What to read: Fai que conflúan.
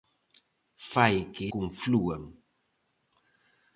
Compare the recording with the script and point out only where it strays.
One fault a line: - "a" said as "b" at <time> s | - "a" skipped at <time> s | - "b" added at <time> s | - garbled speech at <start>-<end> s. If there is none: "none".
none